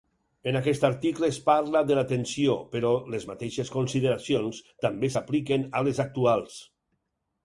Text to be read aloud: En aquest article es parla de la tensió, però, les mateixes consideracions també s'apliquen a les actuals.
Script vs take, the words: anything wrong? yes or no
no